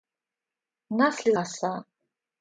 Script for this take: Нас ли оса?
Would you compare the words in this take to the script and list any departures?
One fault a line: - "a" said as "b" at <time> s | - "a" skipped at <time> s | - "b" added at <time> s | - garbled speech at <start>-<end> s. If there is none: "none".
none